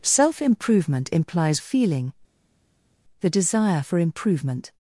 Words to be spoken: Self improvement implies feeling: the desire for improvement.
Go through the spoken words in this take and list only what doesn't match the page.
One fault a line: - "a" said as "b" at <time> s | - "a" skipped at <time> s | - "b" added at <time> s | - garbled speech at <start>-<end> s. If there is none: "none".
none